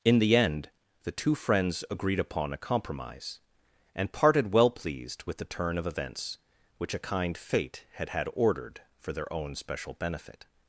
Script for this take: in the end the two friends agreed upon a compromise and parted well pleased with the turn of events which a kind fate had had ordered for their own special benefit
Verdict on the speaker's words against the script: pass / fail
pass